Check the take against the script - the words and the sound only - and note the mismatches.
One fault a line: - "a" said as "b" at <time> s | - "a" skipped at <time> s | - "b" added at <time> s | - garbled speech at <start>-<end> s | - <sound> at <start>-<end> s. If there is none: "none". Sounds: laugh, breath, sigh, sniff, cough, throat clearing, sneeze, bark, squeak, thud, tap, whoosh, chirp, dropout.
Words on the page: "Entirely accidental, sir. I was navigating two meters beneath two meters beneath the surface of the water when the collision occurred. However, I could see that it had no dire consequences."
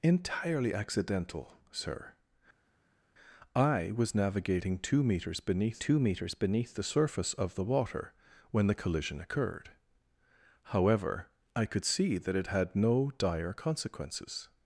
none